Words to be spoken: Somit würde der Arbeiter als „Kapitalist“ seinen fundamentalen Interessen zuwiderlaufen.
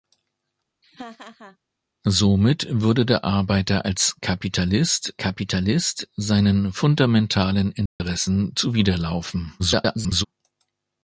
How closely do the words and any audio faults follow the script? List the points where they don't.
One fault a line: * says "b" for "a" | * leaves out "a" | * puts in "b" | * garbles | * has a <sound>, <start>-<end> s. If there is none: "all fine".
* has a laugh, 0.8-1.6 s
* puts in "kapitalist"
* has a dropout, 7.9-8.0 s
* garbles